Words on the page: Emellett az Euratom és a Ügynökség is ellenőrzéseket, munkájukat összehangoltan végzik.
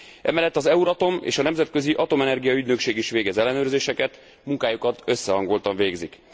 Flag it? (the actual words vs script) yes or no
yes